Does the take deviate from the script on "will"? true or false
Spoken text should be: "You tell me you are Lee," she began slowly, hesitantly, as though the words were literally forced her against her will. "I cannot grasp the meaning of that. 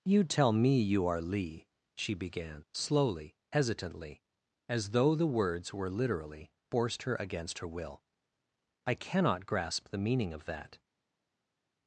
false